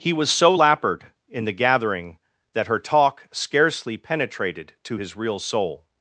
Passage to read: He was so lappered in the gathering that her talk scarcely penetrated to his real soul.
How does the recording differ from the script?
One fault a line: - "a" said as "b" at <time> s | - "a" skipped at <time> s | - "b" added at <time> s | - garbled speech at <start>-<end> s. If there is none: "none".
none